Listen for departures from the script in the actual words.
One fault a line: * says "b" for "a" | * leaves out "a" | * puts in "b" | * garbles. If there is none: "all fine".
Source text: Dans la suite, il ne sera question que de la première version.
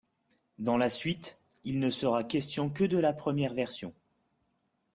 all fine